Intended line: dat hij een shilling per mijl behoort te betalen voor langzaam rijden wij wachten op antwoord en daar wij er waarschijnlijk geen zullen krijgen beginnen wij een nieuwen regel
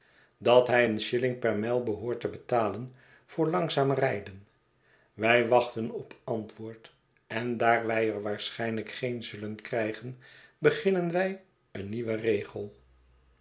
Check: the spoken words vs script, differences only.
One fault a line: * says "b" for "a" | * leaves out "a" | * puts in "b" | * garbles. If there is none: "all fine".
all fine